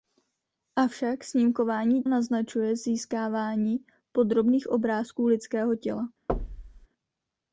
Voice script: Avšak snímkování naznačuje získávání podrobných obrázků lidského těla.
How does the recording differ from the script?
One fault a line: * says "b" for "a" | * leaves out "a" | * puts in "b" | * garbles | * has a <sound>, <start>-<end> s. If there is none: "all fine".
* has a thud, 6.3-6.9 s